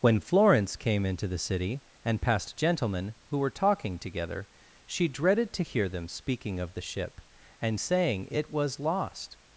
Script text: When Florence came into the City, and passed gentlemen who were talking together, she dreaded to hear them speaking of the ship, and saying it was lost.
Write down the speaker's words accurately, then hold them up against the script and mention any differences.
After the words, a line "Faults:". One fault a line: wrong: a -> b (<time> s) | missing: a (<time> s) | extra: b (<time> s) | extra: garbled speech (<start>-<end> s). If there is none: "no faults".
When Florence came into the City, and passed gentlemen who were talking together, she dreaded to hear them speaking of the ship, and saying it was lost.
Faults:
no faults